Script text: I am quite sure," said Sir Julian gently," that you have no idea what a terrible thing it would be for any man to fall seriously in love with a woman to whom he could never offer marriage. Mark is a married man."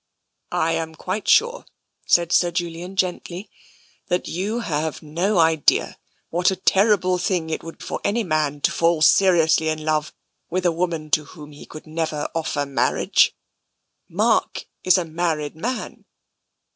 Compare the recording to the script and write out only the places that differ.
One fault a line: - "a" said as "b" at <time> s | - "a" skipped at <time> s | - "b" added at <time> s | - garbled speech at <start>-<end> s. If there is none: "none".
- "be" skipped at 7.8 s